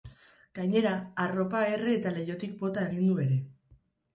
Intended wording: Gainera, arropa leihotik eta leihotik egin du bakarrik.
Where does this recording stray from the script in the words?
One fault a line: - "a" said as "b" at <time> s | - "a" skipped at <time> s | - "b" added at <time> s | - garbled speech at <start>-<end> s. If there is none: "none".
- "leihotik" said as "erre" at 1.8 s
- "bota" added at 2.6 s
- "bakarrik" said as "ere" at 3.3 s